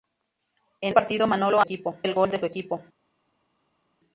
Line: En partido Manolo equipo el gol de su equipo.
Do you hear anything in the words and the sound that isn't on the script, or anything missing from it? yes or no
no